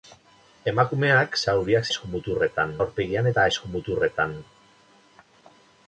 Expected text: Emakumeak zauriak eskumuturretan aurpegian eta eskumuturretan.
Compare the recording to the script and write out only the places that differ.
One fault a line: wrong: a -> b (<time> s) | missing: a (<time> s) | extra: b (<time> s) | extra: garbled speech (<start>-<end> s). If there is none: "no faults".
no faults